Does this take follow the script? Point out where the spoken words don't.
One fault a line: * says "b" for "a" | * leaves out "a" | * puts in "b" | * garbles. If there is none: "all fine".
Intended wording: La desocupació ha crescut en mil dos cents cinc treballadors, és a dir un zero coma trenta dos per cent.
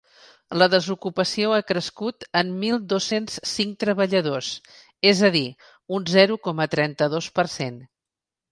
all fine